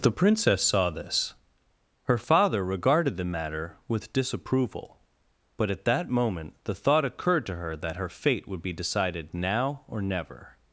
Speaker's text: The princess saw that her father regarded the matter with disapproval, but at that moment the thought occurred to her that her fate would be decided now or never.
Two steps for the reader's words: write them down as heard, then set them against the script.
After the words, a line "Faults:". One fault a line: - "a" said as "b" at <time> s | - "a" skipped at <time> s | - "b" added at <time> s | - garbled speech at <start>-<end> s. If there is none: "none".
The princess saw this her father regarded the matter with disapproval, but at that moment the thought occurred to her that her fate would be decided now or never.
Faults:
- "that" said as "this" at 0.9 s